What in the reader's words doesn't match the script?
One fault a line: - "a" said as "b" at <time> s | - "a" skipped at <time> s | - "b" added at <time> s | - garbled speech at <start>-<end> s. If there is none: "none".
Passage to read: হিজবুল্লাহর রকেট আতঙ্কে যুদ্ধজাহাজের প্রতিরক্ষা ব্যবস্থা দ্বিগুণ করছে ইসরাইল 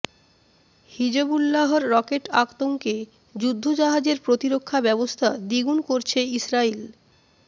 none